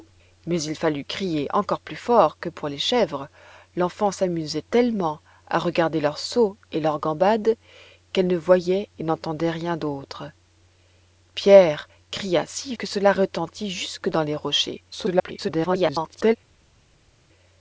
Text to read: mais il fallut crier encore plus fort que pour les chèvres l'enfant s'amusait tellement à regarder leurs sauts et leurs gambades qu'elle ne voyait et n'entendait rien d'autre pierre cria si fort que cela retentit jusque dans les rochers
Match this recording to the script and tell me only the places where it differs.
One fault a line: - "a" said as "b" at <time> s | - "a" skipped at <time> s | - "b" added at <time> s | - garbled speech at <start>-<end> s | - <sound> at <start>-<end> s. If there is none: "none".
- "fort" skipped at 12.8 s
- garbled speech at 14.9-16.4 s